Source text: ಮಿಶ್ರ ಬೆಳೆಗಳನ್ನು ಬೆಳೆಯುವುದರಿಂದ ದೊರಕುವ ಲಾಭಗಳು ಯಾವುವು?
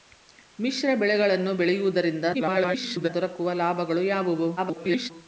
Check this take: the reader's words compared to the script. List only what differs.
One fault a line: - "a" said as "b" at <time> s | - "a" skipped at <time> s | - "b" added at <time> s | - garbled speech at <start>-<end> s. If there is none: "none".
- garbled speech at 2.3-3.1 s
- garbled speech at 4.6-5.1 s